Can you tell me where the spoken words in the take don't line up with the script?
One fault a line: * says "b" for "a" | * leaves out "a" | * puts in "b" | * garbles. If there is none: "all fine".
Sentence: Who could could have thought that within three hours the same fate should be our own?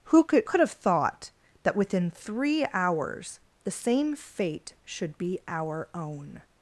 all fine